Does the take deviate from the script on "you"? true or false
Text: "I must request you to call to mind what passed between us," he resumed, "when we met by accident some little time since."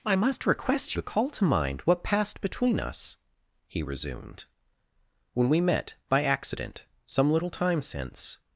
true